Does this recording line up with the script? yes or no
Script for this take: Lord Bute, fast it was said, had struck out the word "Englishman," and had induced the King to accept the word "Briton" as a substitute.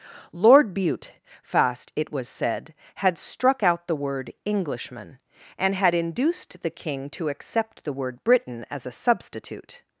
yes